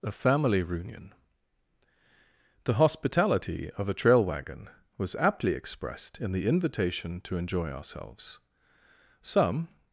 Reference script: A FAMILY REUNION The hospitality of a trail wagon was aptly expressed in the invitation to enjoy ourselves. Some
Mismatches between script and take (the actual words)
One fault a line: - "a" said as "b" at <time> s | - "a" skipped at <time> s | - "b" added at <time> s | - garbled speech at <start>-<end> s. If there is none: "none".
none